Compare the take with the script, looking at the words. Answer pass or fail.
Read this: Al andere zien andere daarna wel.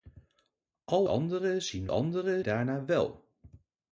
pass